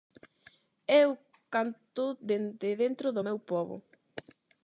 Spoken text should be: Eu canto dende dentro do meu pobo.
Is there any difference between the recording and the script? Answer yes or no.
no